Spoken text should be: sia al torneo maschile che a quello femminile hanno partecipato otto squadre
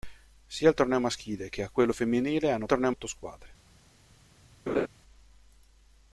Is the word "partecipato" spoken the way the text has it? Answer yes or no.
no